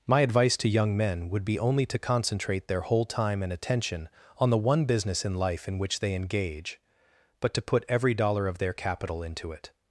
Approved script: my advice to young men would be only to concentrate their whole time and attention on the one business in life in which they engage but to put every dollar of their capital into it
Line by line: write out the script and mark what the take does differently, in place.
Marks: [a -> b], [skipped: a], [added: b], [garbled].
my advice to young men would be only to concentrate their whole time and attention on the one business in life in which they engage but to put every dollar of their capital into it